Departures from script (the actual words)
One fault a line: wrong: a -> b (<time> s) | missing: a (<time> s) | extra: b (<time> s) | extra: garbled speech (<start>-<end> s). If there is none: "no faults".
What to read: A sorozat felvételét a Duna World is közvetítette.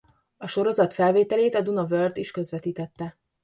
no faults